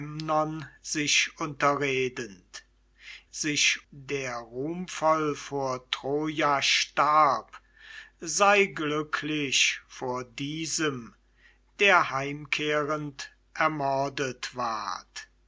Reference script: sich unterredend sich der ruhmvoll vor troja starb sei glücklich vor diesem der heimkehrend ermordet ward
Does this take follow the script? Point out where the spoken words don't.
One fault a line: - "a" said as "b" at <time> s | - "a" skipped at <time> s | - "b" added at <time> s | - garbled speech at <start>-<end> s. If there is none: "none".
none